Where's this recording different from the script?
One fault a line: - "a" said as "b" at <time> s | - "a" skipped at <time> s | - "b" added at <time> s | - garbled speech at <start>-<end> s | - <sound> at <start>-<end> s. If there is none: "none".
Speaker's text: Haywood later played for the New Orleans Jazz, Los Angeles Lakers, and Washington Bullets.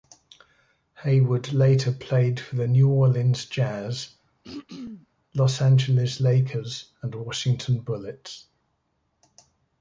- throat clearing at 4.4-5.1 s